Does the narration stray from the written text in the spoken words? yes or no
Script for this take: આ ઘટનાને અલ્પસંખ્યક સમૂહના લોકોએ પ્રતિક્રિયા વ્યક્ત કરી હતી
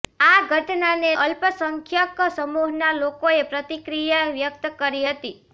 no